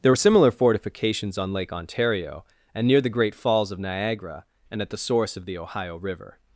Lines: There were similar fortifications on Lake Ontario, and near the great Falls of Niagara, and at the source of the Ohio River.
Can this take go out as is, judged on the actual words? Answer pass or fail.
pass